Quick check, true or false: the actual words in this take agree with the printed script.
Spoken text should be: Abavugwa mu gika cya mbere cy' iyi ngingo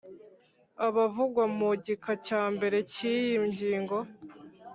true